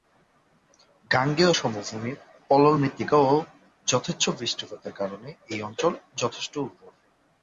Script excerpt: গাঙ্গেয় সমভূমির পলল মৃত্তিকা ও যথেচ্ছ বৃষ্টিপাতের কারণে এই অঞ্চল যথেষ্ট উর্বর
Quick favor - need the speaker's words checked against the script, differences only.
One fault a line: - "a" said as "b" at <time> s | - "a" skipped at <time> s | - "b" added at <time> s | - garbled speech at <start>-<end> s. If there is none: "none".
none